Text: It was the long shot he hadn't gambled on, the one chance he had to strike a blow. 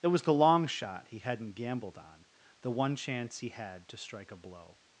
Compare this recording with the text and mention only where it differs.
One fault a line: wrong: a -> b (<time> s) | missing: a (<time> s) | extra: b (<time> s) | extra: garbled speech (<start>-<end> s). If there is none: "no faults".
no faults